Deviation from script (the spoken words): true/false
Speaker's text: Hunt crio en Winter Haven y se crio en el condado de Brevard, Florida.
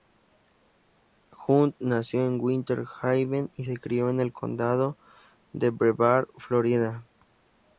true